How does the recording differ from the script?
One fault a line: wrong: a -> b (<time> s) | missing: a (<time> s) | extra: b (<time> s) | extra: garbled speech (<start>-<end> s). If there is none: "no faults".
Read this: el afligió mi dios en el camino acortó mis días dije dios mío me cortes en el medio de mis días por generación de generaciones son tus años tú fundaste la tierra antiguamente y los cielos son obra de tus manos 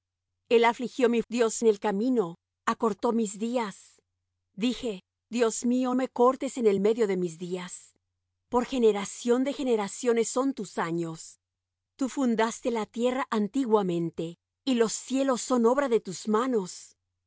no faults